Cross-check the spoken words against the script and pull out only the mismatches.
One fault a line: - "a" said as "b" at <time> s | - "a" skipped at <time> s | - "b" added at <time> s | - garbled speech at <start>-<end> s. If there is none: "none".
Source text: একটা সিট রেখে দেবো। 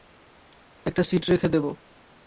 none